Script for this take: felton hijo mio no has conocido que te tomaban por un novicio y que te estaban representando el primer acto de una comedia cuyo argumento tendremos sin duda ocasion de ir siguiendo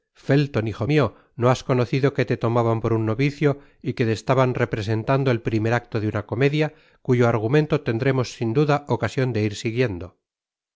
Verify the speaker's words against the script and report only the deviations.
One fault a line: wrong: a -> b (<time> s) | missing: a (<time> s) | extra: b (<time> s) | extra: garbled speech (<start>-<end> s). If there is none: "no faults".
no faults